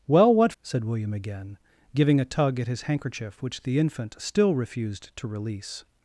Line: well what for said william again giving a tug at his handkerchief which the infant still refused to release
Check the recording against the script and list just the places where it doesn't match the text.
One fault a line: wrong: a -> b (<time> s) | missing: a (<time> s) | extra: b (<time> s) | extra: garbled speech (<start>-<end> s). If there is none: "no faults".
missing: for (0.5 s)